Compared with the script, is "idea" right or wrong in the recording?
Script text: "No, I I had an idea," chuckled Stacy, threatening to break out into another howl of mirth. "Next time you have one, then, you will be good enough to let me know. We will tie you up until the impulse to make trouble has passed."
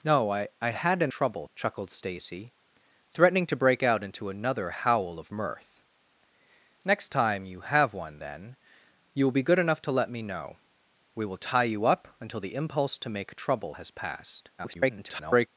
wrong